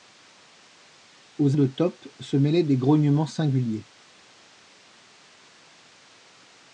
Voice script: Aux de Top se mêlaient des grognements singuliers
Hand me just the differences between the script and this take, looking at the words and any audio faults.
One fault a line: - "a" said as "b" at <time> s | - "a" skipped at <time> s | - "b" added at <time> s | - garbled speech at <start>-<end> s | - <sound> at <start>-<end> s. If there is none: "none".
none